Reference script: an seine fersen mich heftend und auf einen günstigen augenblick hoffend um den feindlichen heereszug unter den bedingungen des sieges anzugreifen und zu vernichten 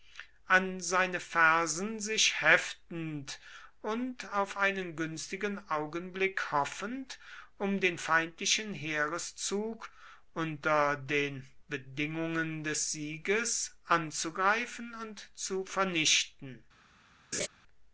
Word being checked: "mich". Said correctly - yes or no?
no